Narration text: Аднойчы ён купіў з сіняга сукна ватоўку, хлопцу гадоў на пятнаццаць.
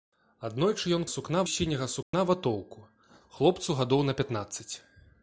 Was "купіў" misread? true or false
true